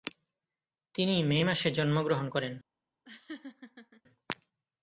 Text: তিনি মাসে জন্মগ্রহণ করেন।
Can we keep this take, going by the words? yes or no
no